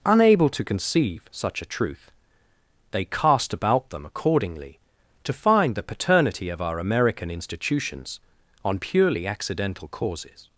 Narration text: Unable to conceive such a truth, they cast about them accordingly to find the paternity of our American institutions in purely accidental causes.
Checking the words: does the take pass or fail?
fail